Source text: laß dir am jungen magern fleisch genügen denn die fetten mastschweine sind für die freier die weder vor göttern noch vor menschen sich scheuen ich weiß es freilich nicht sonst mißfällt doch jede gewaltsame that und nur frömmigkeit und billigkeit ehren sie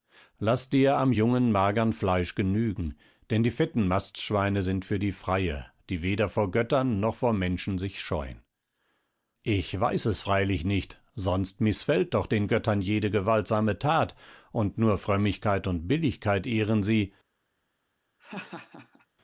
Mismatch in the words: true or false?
true